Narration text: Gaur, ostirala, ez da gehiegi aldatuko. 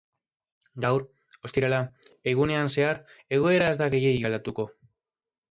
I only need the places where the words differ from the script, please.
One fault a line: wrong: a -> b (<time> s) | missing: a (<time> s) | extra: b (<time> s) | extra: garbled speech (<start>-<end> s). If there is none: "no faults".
extra: egunean zehar egoera (2.3 s)